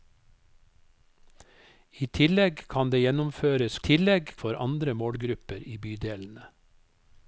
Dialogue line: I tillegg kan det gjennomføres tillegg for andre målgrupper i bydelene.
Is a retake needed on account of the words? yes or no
no